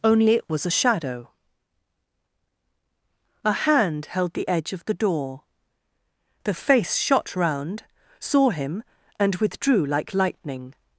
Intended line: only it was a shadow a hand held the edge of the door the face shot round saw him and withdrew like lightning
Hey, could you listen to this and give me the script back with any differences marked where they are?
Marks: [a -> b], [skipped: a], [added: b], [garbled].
only it was a shadow a hand held the edge of the door the face shot round saw him and withdrew like lightning